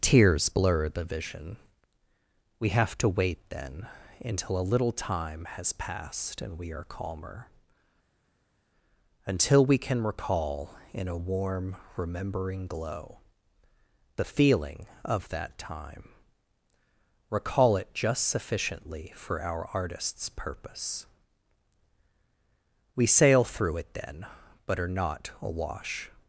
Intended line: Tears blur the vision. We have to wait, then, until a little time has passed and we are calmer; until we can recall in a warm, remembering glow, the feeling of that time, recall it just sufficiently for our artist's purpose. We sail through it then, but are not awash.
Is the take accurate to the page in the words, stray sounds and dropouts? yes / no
yes